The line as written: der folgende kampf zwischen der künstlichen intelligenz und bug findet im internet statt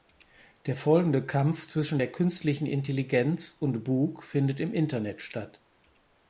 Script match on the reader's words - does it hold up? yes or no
yes